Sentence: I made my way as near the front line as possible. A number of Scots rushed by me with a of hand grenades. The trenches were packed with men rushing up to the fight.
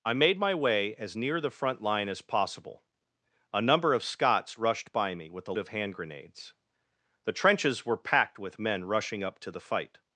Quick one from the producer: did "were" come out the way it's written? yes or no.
yes